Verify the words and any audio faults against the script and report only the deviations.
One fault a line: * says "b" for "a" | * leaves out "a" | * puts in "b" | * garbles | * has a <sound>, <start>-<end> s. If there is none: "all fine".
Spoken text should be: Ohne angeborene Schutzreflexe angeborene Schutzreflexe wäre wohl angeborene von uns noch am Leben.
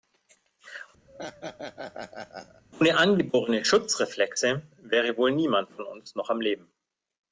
* has a laugh, 1.1-2.6 s
* leaves out "angeborene Schutzreflexe"
* says "niemand" for "angeborene"